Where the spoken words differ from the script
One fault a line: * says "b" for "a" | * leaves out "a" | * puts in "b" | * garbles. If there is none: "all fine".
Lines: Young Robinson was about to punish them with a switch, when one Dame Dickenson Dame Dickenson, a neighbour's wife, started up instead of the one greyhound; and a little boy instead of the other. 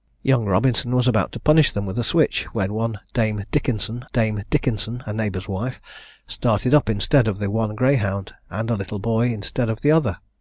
all fine